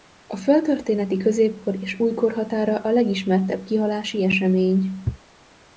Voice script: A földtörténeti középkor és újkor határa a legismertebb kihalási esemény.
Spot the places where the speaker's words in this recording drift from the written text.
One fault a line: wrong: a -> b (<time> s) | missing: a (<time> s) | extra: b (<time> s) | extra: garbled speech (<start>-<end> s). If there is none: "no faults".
no faults